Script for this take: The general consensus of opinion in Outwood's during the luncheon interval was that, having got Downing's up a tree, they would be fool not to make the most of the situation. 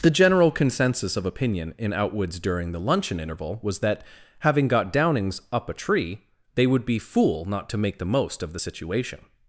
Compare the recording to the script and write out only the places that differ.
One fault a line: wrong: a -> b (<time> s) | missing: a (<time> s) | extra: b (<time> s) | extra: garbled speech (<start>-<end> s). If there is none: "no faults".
no faults